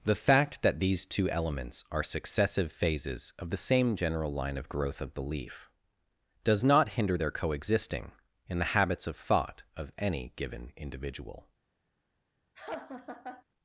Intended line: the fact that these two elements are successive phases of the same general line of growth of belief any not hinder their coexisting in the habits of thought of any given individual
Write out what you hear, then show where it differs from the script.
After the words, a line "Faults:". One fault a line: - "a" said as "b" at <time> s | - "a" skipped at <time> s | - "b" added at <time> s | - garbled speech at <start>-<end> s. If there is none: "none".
the fact that these two elements are successive phases of the same general line of growth of belief does not hinder their coexisting in the habits of thought of any given individual
Faults:
- "any" said as "does" at 6.4 s